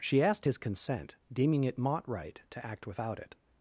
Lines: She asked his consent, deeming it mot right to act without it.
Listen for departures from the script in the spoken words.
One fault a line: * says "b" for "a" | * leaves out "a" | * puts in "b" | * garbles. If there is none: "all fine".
all fine